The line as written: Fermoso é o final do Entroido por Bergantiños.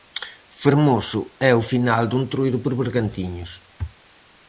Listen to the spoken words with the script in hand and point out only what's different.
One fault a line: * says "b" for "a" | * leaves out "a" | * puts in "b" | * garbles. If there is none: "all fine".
all fine